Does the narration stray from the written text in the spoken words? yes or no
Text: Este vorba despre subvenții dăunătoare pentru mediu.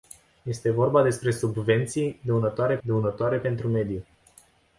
yes